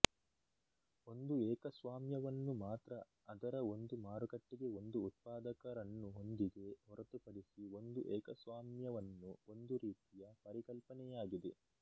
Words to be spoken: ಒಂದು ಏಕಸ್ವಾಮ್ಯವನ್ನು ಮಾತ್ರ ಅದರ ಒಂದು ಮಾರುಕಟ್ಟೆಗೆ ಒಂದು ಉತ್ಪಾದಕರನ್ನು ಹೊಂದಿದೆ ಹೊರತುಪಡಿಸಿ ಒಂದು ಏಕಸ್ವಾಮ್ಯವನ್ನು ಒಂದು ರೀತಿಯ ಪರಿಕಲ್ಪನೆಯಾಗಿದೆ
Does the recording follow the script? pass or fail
pass